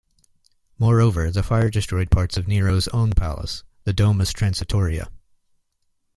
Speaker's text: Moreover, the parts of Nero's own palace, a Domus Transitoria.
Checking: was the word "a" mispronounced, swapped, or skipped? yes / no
yes